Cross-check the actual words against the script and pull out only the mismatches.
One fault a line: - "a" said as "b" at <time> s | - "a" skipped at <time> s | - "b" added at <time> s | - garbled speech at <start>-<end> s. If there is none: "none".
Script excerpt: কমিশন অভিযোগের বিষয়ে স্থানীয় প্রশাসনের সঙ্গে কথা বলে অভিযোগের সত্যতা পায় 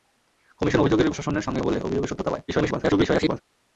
- "বিষয়ে স্থানীয়" skipped at 1.1 s
- "কথা" skipped at 1.6 s
- garbled speech at 2.5-3.4 s